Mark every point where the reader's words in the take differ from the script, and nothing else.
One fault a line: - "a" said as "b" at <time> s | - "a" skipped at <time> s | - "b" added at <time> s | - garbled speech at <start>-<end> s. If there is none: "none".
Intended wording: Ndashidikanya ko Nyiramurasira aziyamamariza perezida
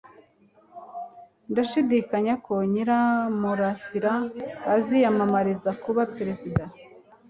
- "kuba" added at 5.8 s